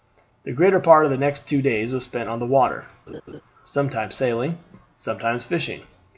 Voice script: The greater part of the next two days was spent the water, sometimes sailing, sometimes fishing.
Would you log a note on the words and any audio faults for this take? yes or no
yes